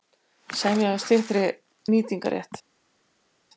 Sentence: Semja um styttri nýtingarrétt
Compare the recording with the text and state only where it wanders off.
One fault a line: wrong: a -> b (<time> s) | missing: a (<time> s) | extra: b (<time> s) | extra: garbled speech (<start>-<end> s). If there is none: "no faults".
no faults